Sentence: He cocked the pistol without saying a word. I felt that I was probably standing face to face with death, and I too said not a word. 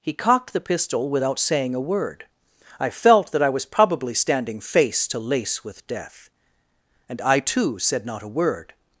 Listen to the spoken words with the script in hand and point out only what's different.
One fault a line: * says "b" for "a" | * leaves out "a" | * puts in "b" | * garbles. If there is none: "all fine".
* says "lace" for "face"